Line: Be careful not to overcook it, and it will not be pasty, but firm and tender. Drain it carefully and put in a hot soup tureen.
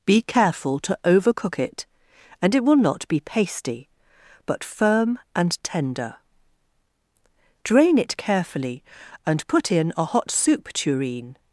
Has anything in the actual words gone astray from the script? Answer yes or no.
yes